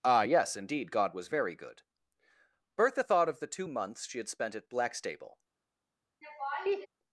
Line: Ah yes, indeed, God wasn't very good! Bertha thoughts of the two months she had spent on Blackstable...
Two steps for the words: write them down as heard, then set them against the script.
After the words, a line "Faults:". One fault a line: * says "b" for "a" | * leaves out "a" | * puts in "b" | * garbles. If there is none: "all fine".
Ah yes, indeed, God was very good! Bertha thought of the two months she had spent at Blackstable...
Faults:
* says "was" for "wasn't"
* says "thought" for "thoughts"
* says "at" for "on"